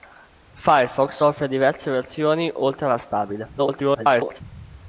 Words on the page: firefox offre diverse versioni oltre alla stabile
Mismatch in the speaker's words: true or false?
true